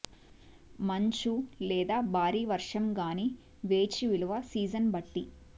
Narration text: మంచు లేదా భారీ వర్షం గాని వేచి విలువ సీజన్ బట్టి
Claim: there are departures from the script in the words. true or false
false